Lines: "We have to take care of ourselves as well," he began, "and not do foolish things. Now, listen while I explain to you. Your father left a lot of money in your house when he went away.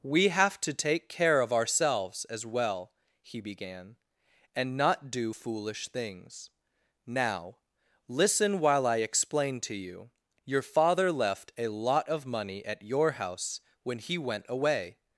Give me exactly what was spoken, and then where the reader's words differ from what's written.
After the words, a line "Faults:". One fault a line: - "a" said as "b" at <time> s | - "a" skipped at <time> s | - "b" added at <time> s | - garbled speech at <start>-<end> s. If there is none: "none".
"We have to take care of ourselves as well," he began, "and not do foolish things. Now, listen while I explain to you. Your father left a lot of money at your house when he went away.
Faults:
- "in" said as "at" at 12.6 s